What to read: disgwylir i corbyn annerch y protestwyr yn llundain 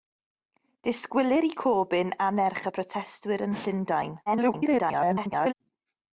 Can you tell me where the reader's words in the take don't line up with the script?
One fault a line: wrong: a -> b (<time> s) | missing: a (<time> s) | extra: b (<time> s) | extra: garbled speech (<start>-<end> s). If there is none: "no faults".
extra: garbled speech (4.3-5.5 s)